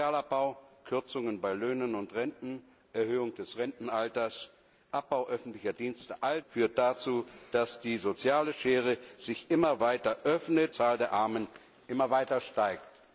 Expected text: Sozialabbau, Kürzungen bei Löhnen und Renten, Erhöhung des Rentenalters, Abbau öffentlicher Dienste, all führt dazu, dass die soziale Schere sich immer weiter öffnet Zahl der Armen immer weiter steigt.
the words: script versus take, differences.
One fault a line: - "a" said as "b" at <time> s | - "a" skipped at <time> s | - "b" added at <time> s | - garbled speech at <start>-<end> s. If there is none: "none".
none